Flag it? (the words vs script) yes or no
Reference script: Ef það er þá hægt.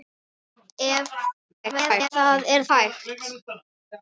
yes